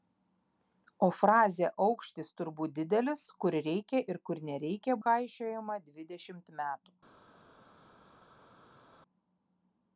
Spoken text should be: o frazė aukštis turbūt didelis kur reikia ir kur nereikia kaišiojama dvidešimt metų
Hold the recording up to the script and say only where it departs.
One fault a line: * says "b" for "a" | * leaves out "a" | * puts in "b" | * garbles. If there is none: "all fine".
all fine